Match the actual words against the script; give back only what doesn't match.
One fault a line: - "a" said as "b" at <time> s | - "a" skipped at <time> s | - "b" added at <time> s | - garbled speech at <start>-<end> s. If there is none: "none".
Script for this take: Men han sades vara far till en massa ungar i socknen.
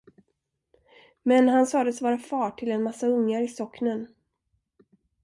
none